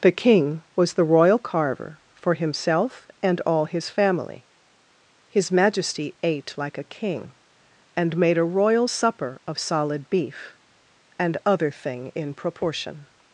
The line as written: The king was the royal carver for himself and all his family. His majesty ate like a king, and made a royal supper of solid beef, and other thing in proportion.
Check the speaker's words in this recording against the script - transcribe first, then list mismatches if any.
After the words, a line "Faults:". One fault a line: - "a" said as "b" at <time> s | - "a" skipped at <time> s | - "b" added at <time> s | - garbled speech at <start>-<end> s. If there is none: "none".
The king was the royal carver for himself and all his family. His majesty ate like a king, and made a royal supper of solid beef, and other thing in proportion.
Faults:
none